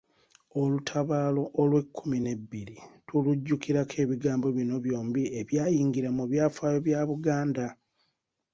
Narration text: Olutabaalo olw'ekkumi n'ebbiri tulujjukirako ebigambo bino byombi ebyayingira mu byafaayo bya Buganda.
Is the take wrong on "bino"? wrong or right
right